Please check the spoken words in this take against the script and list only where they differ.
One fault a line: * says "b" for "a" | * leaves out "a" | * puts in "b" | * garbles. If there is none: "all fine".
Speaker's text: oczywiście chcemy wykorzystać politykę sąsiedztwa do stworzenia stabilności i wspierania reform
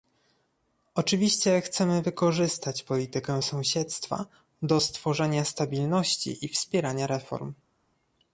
all fine